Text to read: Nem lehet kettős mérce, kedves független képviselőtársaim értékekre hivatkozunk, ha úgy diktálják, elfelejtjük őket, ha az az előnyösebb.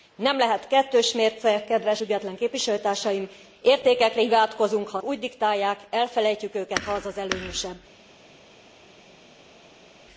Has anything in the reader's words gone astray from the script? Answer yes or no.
no